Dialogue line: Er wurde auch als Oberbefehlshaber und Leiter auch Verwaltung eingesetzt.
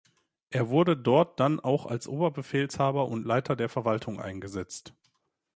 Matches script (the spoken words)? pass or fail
fail